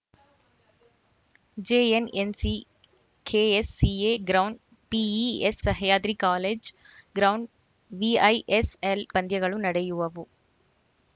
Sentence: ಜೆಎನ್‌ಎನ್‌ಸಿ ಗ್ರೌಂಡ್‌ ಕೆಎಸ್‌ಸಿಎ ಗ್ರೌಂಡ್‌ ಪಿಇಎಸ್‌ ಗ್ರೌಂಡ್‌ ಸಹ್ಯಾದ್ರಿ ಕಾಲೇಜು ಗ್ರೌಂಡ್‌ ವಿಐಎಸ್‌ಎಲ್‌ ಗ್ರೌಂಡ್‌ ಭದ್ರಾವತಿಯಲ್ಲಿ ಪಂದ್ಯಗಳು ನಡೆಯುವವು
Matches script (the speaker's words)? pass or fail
fail